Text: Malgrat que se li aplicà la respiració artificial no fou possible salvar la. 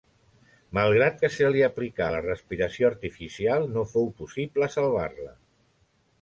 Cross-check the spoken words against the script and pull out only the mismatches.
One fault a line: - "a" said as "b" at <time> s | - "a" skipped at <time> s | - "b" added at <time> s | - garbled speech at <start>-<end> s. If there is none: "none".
none